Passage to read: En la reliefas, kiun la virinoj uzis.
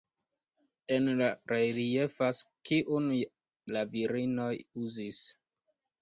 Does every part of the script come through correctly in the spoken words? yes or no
yes